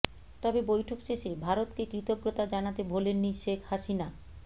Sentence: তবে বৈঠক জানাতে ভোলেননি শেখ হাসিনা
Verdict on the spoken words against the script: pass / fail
fail